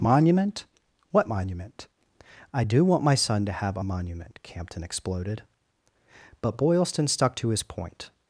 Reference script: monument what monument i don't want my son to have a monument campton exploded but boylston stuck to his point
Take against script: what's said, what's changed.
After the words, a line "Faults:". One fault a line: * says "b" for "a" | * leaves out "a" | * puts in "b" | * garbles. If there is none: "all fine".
monument what monument i do want my son to have a monument campton exploded but boylston stuck to his point
Faults:
* says "do" for "don't"